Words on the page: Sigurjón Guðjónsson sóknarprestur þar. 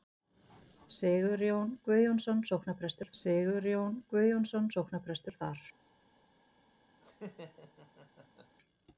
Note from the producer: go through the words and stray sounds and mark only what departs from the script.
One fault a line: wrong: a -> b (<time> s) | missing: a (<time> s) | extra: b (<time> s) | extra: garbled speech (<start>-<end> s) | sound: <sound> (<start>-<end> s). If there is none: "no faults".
extra: sigurjón Guðjónsson sóknarprestur (3.2 s)
sound: laugh (7.0-8.6 s)